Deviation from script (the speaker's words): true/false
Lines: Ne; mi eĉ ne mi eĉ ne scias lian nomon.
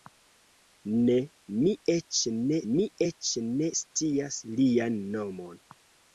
false